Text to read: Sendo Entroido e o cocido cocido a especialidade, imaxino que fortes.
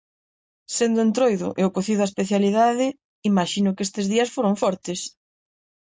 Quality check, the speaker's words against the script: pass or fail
fail